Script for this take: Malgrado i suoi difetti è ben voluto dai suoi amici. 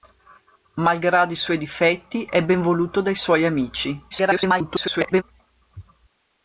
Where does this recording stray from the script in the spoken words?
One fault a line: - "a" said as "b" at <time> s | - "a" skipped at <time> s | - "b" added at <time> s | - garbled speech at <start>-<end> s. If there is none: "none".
- garbled speech at 4.1-5.2 s